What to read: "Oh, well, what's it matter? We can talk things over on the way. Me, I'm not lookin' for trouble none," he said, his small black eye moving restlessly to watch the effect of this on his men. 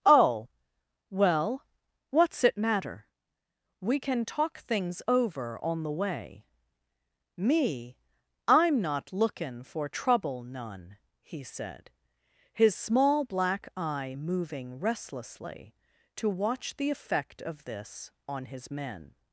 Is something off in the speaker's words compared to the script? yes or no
no